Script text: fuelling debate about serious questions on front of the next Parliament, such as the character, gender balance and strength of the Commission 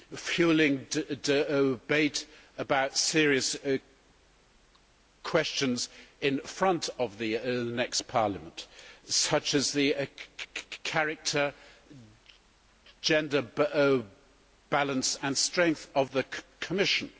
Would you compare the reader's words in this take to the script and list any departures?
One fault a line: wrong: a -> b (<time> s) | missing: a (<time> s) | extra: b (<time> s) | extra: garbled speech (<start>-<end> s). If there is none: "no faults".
wrong: on -> in (6.2 s)